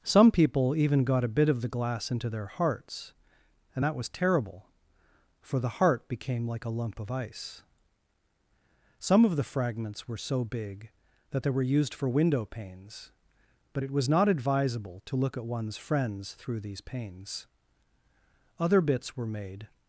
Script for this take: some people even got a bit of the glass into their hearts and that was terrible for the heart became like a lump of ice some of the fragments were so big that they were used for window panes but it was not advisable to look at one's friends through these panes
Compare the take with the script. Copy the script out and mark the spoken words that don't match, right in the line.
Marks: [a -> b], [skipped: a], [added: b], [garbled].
some people even got a bit of the glass into their hearts and that was terrible for the heart became like a lump of ice some of the fragments were so big that they were used for window panes but it was not advisable to look at one's friends through these panes [added: other bits were made]